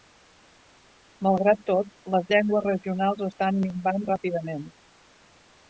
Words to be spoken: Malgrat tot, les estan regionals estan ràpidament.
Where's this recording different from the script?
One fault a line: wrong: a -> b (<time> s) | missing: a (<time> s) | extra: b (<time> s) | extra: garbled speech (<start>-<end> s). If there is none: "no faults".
wrong: estan -> llengües (2.3 s)
extra: minvant (3.6 s)